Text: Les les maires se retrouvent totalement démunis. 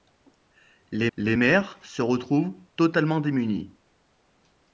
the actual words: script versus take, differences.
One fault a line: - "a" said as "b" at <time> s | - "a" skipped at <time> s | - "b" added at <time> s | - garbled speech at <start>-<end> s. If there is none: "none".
none